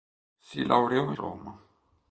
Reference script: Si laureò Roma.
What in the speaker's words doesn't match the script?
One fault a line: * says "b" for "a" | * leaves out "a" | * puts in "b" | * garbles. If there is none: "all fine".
all fine